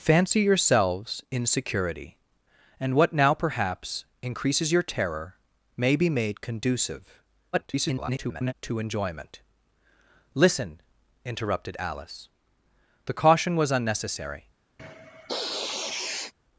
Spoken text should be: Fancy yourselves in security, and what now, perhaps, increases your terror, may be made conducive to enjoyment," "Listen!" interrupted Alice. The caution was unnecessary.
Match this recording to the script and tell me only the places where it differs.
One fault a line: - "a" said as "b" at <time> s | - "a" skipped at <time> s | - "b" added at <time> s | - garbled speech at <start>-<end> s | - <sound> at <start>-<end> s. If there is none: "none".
- garbled speech at 7.5-8.5 s
- sniff at 14.8-16.3 s